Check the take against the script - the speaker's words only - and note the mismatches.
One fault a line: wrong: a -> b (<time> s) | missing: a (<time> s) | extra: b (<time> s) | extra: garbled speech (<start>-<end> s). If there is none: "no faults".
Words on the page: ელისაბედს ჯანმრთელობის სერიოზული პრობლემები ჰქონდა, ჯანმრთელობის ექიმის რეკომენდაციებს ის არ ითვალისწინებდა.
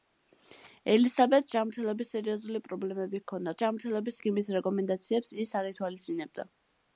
no faults